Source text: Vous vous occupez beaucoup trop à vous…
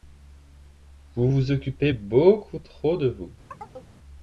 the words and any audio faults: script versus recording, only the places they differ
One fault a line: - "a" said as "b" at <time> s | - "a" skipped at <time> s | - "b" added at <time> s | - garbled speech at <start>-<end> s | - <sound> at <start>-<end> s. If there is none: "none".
- "à" said as "de" at 3.0 s
- chirp at 3.5-3.9 s